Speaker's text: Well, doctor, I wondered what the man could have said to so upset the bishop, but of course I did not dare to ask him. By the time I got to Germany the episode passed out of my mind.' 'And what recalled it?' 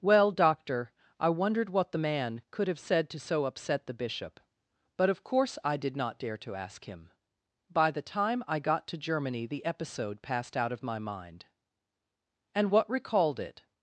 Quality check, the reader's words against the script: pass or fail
pass